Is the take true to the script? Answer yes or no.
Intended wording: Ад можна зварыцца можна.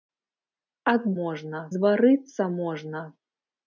yes